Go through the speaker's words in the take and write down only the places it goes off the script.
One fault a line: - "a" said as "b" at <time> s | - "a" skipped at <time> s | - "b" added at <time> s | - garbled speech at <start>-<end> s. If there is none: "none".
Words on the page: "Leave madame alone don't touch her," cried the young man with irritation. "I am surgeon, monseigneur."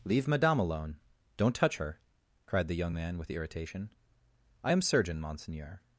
none